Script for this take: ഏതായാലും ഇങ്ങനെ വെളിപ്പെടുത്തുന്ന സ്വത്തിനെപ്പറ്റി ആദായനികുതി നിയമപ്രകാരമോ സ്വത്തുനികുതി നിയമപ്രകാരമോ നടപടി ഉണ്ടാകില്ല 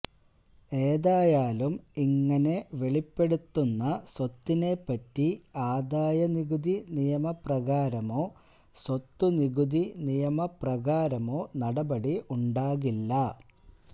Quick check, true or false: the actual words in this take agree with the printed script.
true